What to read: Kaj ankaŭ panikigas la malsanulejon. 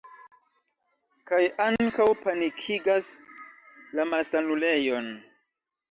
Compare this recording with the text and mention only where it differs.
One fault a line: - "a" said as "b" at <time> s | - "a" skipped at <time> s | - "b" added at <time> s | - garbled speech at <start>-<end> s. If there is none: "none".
none